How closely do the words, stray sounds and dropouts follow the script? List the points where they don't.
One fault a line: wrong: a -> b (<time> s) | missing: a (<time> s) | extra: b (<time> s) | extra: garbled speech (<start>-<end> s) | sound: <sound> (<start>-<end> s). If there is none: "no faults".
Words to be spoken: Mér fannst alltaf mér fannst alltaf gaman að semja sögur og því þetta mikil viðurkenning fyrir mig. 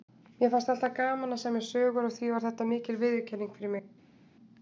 missing: mér fannst alltaf (0.9 s)
extra: var (2.3 s)